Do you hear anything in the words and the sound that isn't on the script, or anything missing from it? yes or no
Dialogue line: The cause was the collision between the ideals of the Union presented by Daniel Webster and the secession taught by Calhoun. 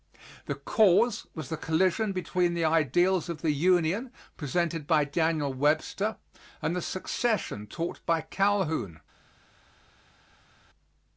no